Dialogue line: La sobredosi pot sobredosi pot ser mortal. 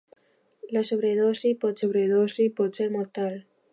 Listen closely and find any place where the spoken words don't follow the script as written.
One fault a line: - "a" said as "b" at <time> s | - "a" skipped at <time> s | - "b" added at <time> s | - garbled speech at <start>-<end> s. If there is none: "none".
none